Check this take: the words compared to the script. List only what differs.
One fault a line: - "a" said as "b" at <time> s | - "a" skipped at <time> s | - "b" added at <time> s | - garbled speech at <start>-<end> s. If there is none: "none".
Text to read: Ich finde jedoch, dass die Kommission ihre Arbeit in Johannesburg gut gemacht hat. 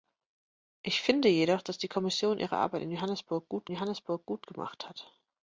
- "Johannesburg gut" added at 3.7 s